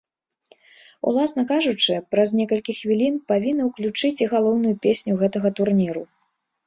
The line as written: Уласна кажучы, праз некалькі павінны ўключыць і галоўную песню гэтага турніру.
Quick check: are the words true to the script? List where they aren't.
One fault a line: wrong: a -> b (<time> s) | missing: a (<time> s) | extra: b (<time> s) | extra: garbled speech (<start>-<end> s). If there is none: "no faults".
extra: хвілін (2.8 s)